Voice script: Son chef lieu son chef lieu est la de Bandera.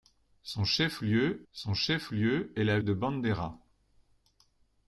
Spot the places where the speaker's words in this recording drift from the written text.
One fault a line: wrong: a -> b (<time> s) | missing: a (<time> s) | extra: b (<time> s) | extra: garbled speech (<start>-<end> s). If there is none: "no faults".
no faults